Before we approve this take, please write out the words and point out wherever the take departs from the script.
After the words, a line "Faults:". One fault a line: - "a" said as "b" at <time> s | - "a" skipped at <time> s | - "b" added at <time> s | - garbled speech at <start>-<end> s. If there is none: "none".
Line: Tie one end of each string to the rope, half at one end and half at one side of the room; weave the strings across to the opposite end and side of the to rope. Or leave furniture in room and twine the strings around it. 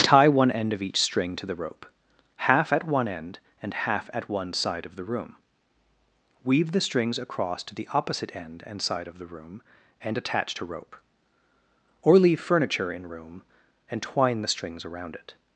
Tie one end of each string to the rope, half at one end and half at one side of the room; weave the strings across to the opposite end and side of the room and attach to rope. Or leave furniture in room and twine the strings around it.
Faults:
- "room and attach" added at 9.3 s